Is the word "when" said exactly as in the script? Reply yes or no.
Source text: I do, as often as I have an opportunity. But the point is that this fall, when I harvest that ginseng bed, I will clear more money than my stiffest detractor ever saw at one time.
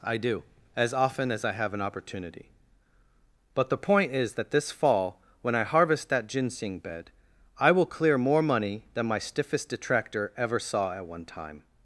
yes